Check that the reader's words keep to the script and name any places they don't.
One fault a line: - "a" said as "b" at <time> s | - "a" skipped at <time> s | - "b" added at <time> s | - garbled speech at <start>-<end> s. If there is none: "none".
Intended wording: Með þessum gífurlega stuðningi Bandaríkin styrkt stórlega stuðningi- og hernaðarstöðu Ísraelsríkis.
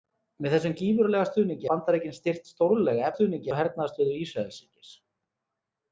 none